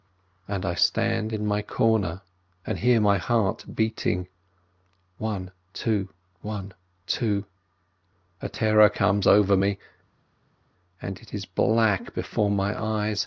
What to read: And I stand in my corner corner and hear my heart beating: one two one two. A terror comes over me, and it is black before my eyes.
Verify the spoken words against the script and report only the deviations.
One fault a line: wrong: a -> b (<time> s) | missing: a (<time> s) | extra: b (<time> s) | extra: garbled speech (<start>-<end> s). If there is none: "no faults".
missing: corner (2.2 s)